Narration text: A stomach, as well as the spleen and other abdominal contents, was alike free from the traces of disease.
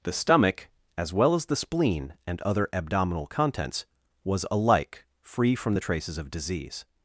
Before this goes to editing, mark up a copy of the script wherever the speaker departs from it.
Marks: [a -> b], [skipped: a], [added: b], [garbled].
[A -> The] stomach, as well as the spleen and other abdominal contents, was alike free from the traces of disease.